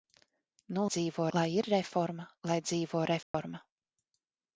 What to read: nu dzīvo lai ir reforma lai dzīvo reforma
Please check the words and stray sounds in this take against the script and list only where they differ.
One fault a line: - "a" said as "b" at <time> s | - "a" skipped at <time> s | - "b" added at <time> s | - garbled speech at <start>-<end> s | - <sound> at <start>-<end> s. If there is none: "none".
- dropout at 3.2-3.3 s